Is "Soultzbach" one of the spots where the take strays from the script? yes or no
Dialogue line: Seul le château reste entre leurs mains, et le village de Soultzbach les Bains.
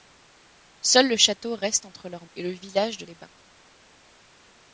yes